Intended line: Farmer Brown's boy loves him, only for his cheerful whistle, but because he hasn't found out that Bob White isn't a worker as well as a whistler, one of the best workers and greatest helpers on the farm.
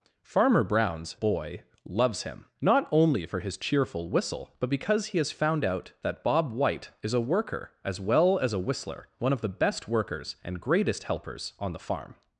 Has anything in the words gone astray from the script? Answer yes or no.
yes